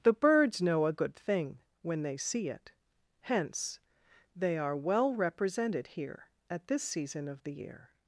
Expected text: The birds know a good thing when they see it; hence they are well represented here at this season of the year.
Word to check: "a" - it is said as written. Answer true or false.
true